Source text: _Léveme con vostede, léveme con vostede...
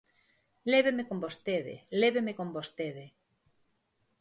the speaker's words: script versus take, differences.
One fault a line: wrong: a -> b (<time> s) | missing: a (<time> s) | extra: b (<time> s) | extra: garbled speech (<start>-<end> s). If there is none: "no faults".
no faults